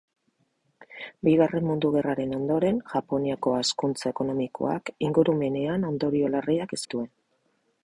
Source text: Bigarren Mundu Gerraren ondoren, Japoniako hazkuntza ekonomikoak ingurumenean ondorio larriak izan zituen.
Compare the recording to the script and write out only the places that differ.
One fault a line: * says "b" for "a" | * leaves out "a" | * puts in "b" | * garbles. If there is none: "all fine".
* leaves out "izan"